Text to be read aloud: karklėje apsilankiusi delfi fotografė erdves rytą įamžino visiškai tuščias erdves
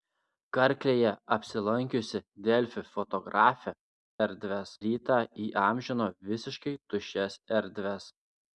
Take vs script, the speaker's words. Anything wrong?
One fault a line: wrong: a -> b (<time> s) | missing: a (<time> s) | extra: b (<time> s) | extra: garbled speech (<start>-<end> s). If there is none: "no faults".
no faults